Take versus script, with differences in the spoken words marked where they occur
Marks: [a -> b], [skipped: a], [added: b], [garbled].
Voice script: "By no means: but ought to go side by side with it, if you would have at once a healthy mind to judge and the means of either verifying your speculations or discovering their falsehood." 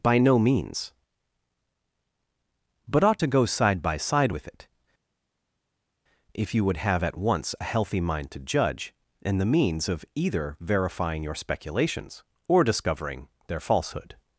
"By no means: but ought to go side by side with it, if you would have at once a healthy mind to judge and the means of either verifying your speculations or discovering their falsehood."